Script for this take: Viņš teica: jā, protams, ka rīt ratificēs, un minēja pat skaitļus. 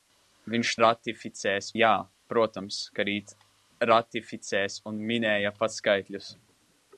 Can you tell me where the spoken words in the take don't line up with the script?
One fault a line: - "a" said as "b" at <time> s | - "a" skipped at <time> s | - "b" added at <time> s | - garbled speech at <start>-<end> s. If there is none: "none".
- "teica" said as "ratificēs" at 0.8 s